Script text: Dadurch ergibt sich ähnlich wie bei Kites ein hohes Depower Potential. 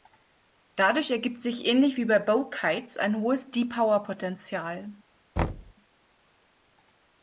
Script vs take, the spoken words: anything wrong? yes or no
yes